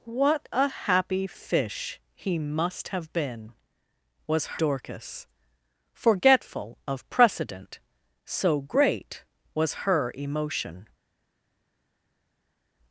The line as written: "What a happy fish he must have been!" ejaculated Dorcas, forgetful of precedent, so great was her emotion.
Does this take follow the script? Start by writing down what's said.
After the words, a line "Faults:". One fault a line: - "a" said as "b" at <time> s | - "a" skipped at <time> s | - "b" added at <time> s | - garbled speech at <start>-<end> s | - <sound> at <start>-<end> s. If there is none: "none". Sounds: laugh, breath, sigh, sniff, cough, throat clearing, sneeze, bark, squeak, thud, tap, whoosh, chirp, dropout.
"What a happy fish he must have been!" was Dorcas, forgetful of precedent, so great was her emotion.
Faults:
- "ejaculated" said as "was" at 4.3 s